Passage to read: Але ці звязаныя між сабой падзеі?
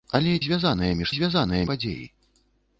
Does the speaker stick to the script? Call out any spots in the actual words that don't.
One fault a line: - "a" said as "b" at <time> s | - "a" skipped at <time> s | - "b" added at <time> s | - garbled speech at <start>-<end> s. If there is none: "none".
- "ці" skipped at 0.3 s
- "сабой" said as "звязаныя" at 1.2 s